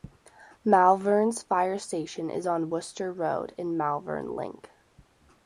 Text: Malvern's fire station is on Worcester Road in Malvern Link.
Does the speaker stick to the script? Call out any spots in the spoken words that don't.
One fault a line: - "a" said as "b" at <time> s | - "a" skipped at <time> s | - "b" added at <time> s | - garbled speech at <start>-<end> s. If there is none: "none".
none